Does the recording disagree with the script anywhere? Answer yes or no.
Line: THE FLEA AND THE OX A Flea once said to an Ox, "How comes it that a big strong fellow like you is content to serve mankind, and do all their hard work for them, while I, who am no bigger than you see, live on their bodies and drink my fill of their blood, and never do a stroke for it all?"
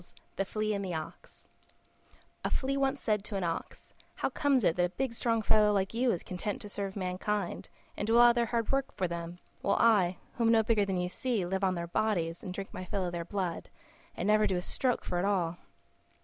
no